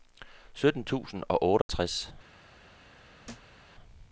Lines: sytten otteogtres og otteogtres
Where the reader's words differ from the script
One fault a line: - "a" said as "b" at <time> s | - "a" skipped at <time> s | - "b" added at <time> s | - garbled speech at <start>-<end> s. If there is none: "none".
- "otteogtres" said as "tusind" at 0.8 s